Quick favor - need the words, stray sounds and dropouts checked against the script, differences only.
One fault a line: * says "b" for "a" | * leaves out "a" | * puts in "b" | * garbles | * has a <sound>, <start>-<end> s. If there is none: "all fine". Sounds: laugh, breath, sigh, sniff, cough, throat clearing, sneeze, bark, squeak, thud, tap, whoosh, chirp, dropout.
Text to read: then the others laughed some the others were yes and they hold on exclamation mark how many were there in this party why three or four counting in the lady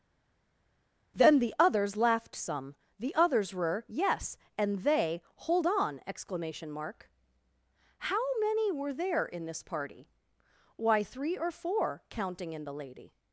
all fine